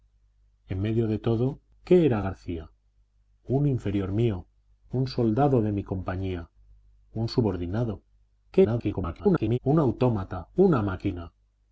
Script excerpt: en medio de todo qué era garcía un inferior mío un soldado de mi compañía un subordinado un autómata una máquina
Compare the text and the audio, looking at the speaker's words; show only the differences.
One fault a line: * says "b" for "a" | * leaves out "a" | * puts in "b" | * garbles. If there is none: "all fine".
* garbles